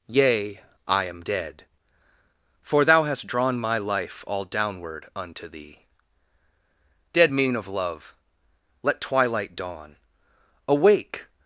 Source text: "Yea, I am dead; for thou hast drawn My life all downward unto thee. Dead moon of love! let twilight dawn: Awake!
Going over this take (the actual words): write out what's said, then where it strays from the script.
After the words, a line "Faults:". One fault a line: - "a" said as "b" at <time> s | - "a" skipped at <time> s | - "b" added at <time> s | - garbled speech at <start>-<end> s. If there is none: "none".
"Yea, I am dead; for thou hast drawn My life all downward unto thee. Dead moon of love! let twilight dawn: Awake!
Faults:
none